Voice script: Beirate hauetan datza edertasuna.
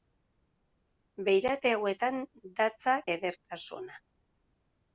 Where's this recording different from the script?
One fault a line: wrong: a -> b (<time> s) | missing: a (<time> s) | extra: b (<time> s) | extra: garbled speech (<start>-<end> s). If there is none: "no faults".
no faults